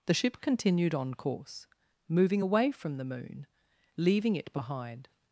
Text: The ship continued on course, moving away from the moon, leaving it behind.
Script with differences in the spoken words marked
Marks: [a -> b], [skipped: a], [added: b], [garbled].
The ship continued on course, moving away from the moon, leaving it behind.